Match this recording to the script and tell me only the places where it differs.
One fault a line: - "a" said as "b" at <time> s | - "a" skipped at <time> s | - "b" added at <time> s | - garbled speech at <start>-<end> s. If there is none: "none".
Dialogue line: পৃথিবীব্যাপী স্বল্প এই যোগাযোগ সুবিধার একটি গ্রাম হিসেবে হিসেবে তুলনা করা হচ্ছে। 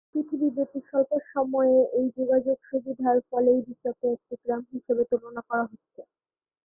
- "সময়ে" added at 1.3 s
- "ফলেই বিশ্বকে" added at 3.3 s
- "হিসেবে" skipped at 5.0 s